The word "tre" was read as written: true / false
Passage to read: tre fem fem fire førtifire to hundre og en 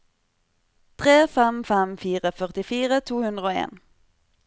true